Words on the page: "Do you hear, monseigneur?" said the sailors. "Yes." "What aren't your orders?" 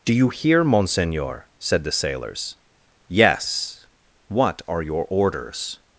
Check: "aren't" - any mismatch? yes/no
yes